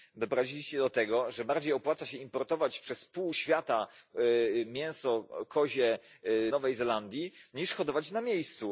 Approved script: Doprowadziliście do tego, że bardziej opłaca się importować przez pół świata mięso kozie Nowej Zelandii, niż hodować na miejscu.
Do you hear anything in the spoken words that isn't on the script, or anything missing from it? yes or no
no